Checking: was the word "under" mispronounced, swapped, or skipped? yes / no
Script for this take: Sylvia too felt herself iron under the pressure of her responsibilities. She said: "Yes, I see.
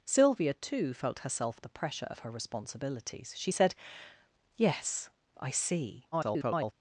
yes